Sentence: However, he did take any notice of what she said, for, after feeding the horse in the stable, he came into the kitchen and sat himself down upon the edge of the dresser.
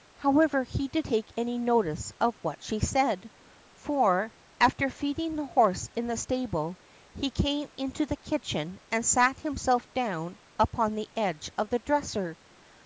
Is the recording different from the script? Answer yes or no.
no